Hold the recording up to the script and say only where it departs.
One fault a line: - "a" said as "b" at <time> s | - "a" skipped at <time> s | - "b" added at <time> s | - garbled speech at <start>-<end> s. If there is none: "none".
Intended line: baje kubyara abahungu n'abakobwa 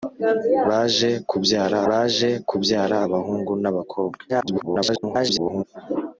- "baje kubyara" added at 1.9 s
- garbled speech at 4.3-5.6 s